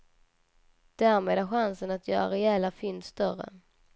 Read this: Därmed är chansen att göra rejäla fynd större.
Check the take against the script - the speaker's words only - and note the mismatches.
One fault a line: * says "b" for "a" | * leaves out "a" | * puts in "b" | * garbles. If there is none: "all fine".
all fine